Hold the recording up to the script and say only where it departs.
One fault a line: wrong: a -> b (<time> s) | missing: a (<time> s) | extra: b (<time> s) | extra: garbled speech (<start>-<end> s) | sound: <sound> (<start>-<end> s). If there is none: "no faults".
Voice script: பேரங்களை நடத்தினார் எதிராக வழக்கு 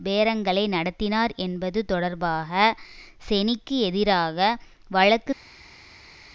extra: என்பது தொடர்பாக செனிக்கு (1.4 s)